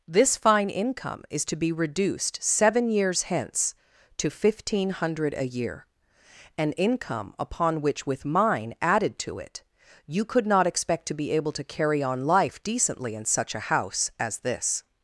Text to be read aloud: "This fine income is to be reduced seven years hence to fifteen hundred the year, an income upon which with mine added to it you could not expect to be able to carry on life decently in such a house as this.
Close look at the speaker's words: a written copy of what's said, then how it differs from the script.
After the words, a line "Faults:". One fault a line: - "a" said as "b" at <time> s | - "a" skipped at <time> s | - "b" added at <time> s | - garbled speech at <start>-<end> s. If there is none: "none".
"This fine income is to be reduced seven years hence to fifteen hundred a year, an income upon which with mine added to it you could not expect to be able to carry on life decently in such a house as this.
Faults:
- "the" said as "a" at 5.3 s